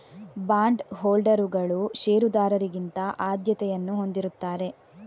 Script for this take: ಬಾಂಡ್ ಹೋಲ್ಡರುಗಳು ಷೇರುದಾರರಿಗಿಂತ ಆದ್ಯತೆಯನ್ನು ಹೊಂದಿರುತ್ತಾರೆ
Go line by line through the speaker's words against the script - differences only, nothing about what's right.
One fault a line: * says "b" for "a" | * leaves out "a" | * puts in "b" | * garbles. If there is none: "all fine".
all fine